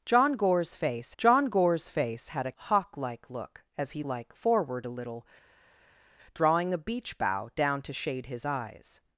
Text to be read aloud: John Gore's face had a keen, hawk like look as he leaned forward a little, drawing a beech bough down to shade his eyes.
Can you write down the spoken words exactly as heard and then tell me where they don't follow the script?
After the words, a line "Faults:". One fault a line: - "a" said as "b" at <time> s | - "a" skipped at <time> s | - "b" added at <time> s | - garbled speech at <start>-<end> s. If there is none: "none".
John Gore's face john Gore's face had a hawk like look as he like forward a little, drawing a beech bough down to shade his eyes.
Faults:
- "john Gore's face" added at 1.2 s
- "keen" skipped at 2.5 s
- "leaned" said as "like" at 4.0 s